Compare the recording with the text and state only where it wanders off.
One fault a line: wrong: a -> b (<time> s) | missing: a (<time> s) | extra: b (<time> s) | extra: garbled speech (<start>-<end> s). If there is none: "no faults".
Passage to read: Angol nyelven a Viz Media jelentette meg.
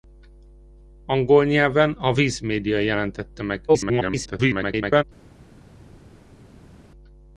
extra: garbled speech (3.7-5.0 s)